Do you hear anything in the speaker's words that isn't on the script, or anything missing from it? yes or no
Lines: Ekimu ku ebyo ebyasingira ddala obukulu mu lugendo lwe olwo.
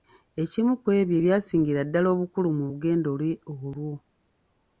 no